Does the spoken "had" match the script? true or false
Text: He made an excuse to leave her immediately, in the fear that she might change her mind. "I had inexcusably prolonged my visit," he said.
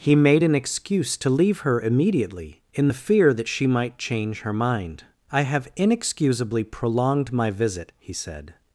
false